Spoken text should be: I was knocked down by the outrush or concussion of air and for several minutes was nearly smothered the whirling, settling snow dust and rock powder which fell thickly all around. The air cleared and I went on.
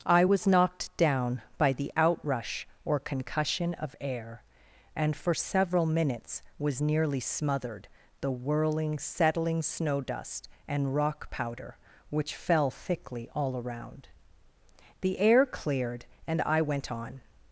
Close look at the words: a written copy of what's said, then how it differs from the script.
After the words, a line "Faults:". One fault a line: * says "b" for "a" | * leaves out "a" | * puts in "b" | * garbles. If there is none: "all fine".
I was knocked down by the outrush or concussion of air and for several minutes was nearly smothered the whirling, settling snow dust and rock powder which fell thickly all around. The air cleared and I went on.
Faults:
all fine